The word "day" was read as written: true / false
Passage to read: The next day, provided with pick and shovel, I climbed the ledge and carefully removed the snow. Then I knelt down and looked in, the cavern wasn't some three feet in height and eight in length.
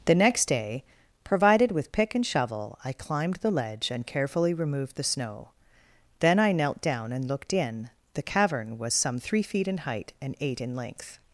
true